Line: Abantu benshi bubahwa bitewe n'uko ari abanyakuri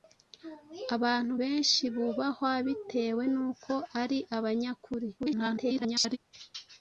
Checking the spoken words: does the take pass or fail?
fail